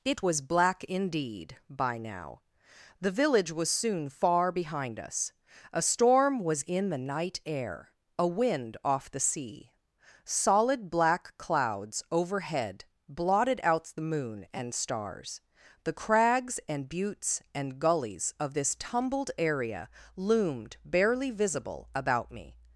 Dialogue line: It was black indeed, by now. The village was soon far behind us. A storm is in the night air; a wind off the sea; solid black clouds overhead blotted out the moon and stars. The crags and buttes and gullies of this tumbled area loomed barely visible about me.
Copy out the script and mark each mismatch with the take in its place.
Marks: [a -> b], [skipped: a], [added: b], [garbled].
It was black indeed, by now. The village was soon far behind us. A storm [is -> was] in the night air; a wind off the sea; solid black clouds overhead blotted out the moon and stars. The crags and buttes and gullies of this tumbled area loomed barely visible about me.